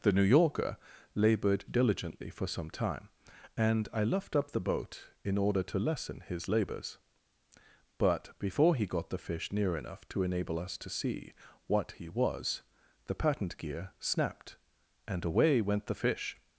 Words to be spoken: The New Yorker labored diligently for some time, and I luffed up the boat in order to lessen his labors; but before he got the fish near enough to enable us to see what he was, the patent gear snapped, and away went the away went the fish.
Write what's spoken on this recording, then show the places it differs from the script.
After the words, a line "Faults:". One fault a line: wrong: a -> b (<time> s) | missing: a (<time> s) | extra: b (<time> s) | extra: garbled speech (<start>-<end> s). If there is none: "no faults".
The New Yorker labored diligently for some time, and I luffed up the boat in order to lessen his labors; but before he got the fish near enough to enable us to see what he was, the patent gear snapped, and away went the fish.
Faults:
missing: away went the (16.0 s)